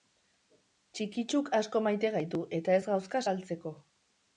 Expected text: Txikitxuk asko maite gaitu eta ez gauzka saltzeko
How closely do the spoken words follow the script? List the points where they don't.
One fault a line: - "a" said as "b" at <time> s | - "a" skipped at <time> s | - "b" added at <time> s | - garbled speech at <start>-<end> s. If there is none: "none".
none